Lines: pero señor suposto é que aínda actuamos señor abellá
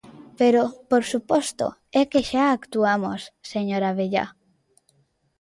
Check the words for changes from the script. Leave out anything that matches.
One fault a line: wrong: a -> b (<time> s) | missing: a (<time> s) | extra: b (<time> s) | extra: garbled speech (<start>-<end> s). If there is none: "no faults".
wrong: señor -> por (0.9 s)
wrong: aínda -> xa (2.3 s)